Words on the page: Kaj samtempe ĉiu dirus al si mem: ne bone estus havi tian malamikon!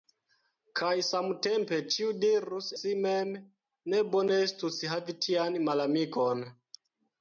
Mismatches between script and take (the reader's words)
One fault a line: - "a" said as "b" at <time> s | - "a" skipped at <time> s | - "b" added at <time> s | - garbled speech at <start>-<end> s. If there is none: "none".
- "al" skipped at 2.7 s